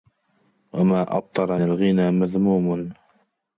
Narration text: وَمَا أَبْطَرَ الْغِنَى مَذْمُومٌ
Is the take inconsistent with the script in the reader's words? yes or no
no